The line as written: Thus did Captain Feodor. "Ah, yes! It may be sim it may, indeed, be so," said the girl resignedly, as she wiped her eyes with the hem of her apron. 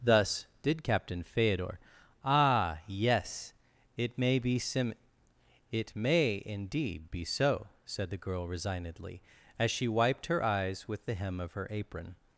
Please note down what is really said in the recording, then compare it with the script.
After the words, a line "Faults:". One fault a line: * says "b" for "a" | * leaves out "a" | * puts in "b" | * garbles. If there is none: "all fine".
Thus did Captain Feodor. "Ah, yes! It may be sim it may, indeed, be so," said the girl resignedly, as she wiped her eyes with the hem of her apron.
Faults:
all fine